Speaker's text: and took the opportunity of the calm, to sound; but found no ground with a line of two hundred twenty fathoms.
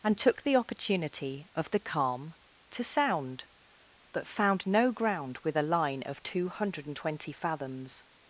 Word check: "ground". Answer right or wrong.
right